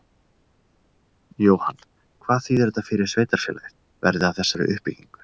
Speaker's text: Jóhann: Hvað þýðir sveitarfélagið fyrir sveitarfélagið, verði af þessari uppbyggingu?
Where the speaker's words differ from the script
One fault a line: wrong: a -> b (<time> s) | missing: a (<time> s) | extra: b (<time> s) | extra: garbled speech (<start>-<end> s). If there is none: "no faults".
wrong: sveitarfélagið -> þetta (2.7 s)